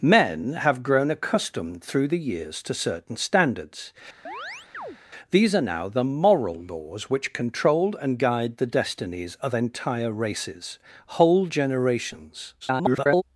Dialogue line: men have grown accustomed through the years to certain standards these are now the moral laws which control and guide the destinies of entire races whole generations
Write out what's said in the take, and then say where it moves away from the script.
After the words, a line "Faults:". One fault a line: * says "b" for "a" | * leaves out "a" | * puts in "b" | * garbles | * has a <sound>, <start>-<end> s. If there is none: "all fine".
men have grown accustomed through the years to certain standards these are now the moral laws which control and guide the destinies of entire races whole generations [garbled]
Faults:
* has a chirp, 4.2-5.0 s
* garbles